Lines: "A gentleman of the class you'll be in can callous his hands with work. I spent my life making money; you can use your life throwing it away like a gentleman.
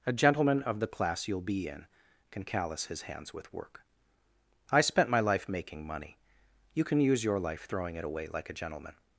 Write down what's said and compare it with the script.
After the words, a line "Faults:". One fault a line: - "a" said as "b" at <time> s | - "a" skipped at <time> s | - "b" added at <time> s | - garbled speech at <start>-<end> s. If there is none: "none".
"A gentleman of the class you'll be in can callous his hands with work. I spent my life making money; you can use your life throwing it away like a gentleman.
Faults:
none